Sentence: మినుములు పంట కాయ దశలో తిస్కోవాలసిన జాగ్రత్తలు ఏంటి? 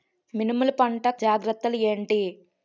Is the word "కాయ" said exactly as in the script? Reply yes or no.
no